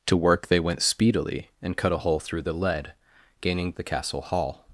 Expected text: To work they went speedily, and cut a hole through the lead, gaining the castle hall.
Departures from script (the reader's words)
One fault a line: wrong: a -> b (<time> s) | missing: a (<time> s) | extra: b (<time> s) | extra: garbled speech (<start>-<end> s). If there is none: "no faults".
no faults